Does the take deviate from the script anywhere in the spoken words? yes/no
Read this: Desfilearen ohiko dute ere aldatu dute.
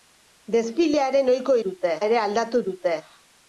no